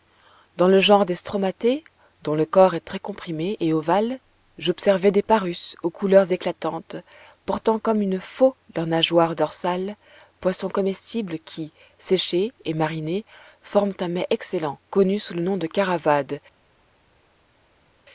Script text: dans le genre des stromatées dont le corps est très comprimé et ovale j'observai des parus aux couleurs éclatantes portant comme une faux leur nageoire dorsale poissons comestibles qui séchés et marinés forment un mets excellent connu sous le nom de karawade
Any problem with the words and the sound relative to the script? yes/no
no